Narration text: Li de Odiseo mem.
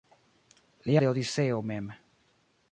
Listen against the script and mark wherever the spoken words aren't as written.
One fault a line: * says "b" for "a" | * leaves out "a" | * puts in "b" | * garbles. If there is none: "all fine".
all fine